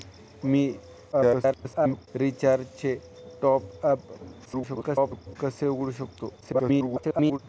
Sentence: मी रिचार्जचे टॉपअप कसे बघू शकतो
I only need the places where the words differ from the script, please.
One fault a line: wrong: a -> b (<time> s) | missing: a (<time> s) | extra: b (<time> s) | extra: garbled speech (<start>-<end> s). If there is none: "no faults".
extra: garbled speech (1.1-2.1 s)
extra: garbled speech (4.4-5.4 s)
extra: garbled speech (6.4-7.4 s)